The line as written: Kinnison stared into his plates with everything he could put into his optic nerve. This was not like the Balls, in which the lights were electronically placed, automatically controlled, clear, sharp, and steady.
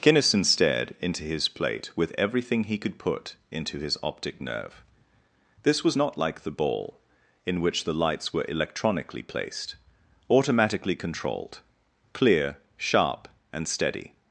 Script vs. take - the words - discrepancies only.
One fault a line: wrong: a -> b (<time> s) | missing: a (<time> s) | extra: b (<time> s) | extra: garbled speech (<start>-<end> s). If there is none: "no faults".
wrong: plates -> plate (1.5 s)
wrong: Balls -> Ball (6.5 s)